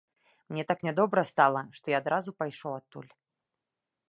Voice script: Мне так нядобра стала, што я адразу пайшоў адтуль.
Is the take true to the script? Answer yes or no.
yes